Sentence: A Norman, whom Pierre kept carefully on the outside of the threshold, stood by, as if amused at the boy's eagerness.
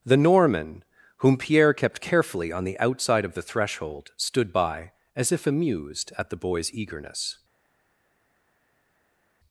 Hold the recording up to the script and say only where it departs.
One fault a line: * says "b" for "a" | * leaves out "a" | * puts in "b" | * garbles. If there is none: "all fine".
* says "The" for "A"